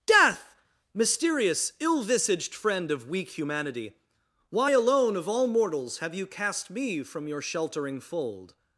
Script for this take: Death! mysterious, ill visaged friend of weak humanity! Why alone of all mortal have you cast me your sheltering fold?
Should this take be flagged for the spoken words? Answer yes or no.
yes